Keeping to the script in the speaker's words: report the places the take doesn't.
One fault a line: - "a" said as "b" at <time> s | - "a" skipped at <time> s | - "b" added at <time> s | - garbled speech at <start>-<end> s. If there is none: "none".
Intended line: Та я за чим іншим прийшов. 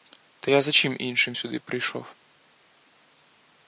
- "сюди" added at 1.3 s